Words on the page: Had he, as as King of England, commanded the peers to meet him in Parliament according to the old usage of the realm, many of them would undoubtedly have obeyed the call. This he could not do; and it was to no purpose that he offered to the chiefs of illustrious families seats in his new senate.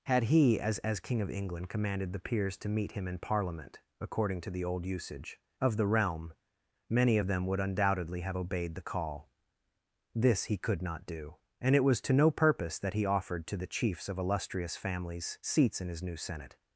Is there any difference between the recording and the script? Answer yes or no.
no